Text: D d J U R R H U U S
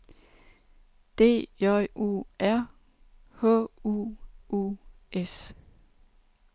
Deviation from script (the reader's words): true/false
true